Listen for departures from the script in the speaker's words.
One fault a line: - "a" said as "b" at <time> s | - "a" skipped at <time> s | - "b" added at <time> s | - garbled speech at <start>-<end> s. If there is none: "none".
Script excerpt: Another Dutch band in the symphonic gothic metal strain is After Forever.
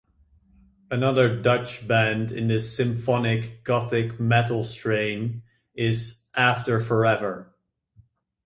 none